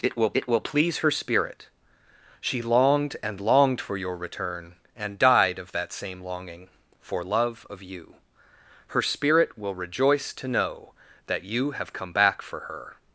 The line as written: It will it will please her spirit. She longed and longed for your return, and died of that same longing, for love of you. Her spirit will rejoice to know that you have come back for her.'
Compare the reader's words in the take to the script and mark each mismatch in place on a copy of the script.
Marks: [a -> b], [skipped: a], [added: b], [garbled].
It will it will please her spirit. She longed and longed for your return, and died of that same longing, for love of you. Her spirit will rejoice to know that you have come back for her.'